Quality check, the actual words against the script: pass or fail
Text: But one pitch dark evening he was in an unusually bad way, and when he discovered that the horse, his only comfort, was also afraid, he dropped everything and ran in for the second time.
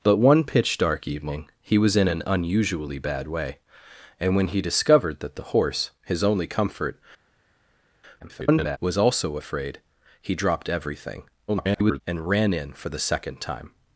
fail